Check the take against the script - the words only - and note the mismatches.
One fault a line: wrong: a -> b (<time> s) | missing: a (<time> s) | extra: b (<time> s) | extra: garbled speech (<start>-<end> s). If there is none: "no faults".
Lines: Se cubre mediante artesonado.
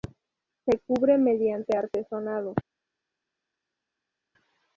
no faults